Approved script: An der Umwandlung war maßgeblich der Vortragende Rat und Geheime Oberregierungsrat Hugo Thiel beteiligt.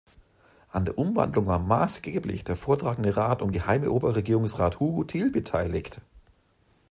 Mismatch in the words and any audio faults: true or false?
false